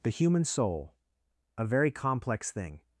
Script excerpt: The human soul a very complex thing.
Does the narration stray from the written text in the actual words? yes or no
no